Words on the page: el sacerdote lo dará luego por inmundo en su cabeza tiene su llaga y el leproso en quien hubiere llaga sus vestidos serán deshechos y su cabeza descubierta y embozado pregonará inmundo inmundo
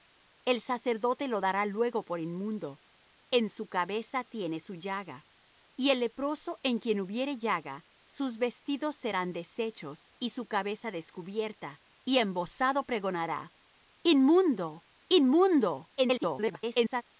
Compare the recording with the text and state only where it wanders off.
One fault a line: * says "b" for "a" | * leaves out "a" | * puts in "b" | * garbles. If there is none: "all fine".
* garbles